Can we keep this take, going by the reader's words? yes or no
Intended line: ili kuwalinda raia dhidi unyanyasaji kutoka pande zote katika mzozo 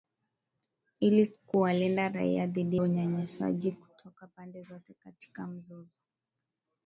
yes